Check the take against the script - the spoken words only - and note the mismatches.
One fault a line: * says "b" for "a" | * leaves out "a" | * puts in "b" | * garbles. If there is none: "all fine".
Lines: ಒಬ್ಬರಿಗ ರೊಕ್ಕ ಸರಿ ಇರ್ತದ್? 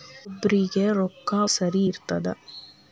all fine